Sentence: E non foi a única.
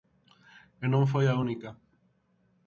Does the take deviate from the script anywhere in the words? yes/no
no